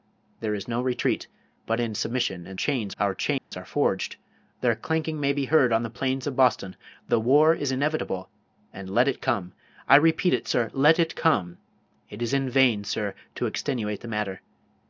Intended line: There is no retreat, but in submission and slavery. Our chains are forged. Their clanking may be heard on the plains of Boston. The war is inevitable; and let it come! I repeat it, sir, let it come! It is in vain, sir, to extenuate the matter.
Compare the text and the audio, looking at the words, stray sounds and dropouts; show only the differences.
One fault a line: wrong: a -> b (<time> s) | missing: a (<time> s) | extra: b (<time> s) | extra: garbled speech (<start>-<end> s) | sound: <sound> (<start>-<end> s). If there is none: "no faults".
wrong: slavery -> chains (2.5 s)
sound: dropout (3.4-3.5 s)